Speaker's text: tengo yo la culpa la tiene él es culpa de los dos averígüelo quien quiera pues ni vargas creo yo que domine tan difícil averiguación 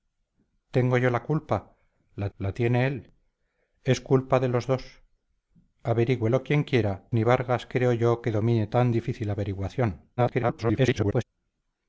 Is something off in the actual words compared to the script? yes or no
yes